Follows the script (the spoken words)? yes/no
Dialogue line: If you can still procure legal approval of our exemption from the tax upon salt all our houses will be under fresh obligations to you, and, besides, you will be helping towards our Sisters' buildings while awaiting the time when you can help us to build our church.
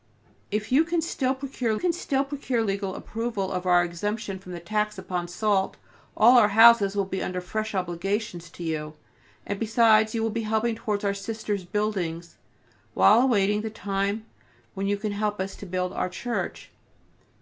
no